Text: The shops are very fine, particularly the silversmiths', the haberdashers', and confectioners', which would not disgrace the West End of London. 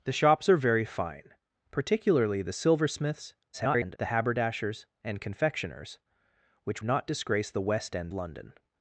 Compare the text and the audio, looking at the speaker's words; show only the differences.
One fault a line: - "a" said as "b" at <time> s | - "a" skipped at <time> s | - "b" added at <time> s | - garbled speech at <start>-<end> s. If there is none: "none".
- garbled speech at 3.5-4.0 s
- "would" skipped at 6.8 s
- "of" skipped at 8.1 s